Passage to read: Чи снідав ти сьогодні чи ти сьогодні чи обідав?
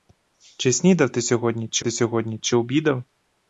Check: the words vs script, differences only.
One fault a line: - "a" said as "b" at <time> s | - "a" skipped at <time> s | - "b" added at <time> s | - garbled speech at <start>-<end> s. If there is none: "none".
none